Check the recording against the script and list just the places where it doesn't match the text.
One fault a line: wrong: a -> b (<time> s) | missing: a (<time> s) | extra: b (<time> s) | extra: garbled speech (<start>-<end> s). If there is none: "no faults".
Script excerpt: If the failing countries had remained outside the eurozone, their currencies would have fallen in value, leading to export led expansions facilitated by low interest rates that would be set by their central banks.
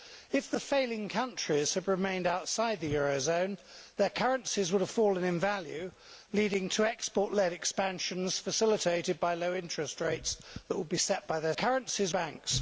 wrong: central -> currencies (11.5 s)